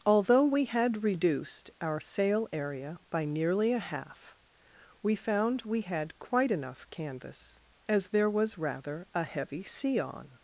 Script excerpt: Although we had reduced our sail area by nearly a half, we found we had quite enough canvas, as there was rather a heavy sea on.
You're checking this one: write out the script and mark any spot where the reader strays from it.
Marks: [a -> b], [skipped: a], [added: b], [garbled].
Although we had reduced our sail area by nearly a half, we found we had quite enough canvas, as there was rather a heavy sea on.